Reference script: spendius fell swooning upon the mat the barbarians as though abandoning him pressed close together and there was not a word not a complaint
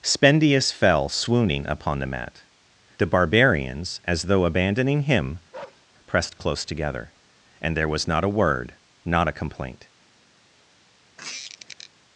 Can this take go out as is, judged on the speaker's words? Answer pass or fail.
pass